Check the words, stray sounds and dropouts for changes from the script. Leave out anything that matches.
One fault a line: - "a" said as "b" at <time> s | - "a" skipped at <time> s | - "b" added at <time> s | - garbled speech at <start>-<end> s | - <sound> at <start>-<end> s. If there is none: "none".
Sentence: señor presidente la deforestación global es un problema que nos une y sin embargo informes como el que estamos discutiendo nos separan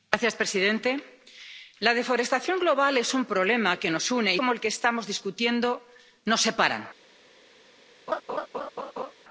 - "sin embargo informes" skipped at 4.4 s
- laugh at 8.1-9.1 s